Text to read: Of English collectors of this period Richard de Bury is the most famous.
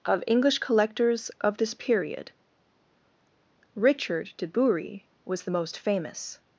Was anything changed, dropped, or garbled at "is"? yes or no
yes